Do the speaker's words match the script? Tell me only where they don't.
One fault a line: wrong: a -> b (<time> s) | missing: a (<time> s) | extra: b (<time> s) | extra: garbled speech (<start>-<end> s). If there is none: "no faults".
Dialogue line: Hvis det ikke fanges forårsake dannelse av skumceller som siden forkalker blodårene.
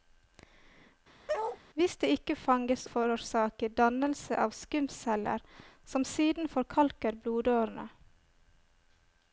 no faults